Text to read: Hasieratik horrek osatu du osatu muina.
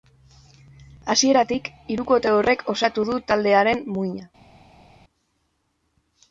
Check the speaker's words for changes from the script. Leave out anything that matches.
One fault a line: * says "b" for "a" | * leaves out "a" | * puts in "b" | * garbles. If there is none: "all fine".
* puts in "hirukote"
* says "taldearen" for "osatu"